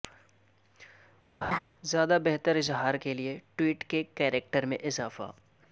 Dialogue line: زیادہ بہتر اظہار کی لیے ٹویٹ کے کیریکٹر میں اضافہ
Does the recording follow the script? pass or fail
fail